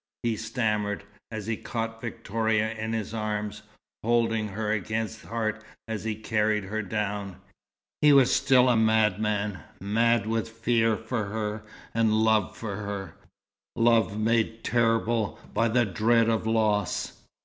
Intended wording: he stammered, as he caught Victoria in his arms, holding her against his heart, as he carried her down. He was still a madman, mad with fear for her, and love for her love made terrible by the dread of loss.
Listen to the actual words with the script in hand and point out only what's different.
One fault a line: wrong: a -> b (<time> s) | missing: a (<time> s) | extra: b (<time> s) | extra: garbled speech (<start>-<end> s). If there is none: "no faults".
missing: his (5.2 s)